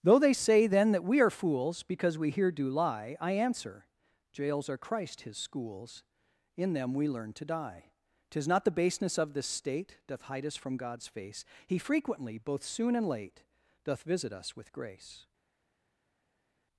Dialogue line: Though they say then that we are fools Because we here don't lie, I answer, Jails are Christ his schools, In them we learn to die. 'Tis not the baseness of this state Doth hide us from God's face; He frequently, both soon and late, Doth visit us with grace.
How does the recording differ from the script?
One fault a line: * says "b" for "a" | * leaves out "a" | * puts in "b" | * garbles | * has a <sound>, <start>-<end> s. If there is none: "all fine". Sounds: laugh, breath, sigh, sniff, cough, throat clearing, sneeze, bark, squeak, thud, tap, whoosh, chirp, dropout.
* says "do" for "don't"